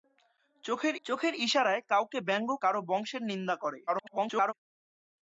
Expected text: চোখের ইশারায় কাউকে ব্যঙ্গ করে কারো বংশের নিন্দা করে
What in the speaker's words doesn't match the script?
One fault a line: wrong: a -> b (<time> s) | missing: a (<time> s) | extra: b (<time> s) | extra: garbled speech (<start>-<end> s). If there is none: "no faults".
extra: চোখের (1.0 s)
missing: করে (2.5 s)
extra: garbled speech (3.9-4.5 s)